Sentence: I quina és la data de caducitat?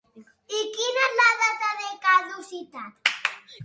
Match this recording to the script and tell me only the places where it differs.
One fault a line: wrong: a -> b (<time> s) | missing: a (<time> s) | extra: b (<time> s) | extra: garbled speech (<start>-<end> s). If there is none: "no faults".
no faults